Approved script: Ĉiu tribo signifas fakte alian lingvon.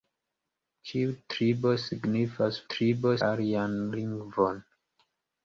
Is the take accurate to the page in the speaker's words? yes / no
no